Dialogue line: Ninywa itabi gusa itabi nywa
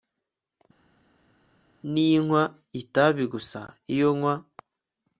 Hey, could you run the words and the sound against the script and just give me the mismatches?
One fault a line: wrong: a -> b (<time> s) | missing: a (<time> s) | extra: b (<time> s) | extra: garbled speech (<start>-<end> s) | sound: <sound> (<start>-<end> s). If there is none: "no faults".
wrong: itabi -> iyo (3.9 s)